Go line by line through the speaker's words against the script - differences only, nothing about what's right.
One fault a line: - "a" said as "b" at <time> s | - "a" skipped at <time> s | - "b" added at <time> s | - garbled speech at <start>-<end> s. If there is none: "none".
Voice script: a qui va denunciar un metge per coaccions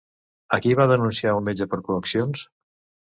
none